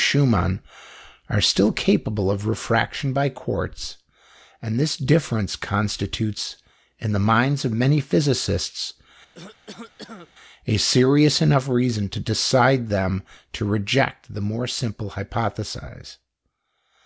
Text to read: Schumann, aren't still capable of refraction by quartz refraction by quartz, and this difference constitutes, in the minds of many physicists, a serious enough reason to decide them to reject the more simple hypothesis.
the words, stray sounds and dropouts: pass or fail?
fail